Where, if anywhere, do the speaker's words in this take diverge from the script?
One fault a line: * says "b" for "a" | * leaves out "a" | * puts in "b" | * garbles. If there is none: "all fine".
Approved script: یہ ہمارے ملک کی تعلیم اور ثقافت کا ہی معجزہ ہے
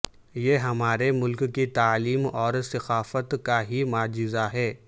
all fine